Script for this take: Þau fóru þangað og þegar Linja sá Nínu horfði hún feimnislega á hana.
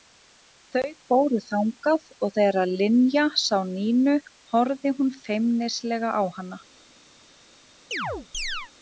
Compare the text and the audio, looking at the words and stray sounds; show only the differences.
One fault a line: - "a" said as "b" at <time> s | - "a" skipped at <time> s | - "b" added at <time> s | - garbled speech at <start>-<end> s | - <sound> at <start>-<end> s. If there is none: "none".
- chirp at 7.9-8.7 s